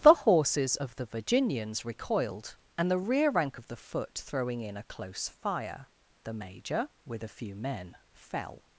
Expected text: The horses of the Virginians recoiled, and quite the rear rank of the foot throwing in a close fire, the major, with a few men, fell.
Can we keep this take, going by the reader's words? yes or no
no